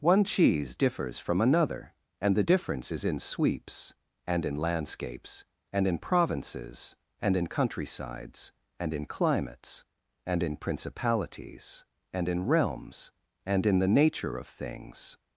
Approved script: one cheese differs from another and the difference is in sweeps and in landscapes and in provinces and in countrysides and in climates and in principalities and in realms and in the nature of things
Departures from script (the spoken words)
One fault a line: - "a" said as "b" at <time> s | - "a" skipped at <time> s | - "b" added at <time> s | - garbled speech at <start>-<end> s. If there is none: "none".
none